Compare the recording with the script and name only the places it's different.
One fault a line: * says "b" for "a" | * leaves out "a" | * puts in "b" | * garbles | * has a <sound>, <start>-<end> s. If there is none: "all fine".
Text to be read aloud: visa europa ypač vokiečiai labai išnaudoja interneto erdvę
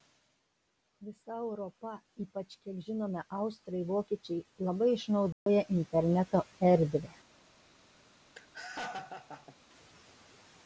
* puts in "kiek žinome austrai"
* has a dropout, 5.3-5.5 s
* has a laugh, 8.4-9.6 s